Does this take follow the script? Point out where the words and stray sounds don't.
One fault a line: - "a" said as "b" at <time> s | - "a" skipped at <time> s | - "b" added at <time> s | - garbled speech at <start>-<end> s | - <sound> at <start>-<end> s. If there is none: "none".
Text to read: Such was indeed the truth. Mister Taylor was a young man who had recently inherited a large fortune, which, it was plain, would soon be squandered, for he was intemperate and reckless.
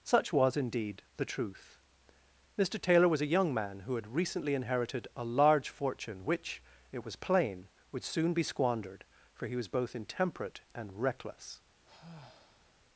- "both" added at 9.7 s
- sigh at 11.8-12.8 s